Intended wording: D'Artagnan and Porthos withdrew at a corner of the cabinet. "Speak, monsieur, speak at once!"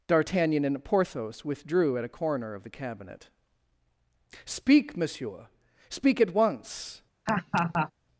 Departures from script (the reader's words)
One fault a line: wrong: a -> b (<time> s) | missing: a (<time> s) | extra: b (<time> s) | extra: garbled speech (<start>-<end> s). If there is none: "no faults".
no faults